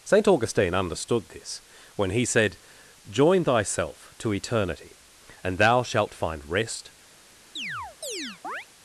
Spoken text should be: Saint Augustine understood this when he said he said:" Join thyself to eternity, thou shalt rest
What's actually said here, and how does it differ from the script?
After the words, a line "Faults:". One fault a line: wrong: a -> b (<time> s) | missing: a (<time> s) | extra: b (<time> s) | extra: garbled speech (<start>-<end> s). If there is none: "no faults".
Saint Augustine understood this when he said:" Join thyself to eternity, and thou shalt find rest
Faults:
missing: he said (2.6 s)
extra: and (5.4 s)
extra: find (6.1 s)